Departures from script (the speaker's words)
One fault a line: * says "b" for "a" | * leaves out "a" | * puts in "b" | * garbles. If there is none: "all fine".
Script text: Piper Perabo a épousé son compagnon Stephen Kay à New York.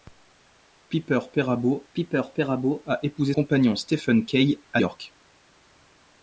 * puts in "piper Perabo"
* leaves out "son"
* leaves out "New"